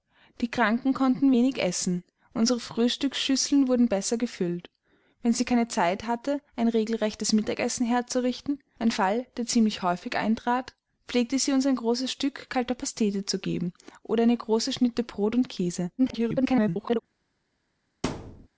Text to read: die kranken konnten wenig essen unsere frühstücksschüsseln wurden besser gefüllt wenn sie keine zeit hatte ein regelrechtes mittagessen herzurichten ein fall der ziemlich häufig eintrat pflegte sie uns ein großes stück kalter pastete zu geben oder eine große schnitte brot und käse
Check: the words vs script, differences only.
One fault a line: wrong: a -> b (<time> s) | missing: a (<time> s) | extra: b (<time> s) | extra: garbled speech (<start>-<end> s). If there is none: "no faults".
extra: garbled speech (16.0-17.0 s)